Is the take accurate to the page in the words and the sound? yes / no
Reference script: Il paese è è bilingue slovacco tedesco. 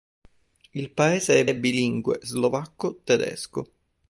yes